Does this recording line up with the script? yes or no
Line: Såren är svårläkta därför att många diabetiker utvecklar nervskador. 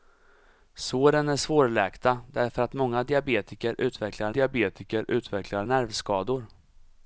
no